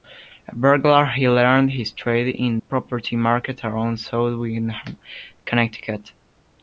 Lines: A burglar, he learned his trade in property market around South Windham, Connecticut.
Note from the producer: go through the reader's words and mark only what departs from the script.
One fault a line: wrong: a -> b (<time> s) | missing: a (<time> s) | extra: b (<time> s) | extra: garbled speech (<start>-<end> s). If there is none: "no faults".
no faults